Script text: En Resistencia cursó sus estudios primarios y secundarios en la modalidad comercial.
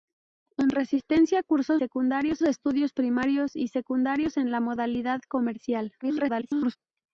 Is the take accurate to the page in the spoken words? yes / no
no